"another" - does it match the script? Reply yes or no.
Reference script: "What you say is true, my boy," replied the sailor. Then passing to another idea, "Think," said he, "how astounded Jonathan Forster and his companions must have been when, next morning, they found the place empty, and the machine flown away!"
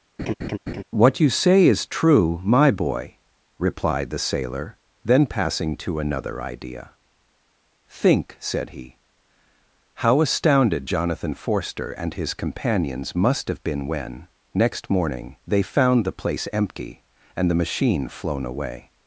yes